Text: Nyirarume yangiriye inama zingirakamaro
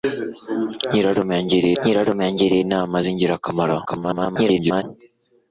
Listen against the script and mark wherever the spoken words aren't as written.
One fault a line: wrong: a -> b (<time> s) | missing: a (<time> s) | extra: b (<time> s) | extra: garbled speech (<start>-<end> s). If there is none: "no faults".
extra: nyirarume yangiriye (1.8 s)
extra: garbled speech (3.8-4.8 s)